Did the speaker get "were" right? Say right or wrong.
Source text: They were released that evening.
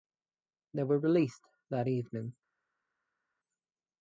right